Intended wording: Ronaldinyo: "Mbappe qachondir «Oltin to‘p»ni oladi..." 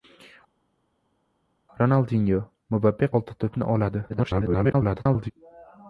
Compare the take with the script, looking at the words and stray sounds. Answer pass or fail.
fail